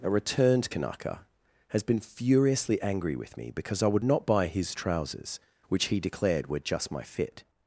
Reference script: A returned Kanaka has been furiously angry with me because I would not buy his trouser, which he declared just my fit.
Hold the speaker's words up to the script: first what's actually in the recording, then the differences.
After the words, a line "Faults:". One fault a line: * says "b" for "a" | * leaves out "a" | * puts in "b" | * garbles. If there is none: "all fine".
A returned Kanaka has been furiously angry with me because I would not buy his trousers, which he declared were just my fit.
Faults:
* says "trousers" for "trouser"
* puts in "were"